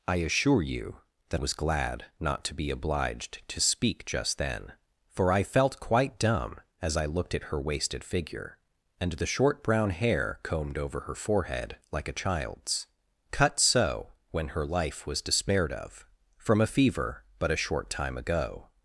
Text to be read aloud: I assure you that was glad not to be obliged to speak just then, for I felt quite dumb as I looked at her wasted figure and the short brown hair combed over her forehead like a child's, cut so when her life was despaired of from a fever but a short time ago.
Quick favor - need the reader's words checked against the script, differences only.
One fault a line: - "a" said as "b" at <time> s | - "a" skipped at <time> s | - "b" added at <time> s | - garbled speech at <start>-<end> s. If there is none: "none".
none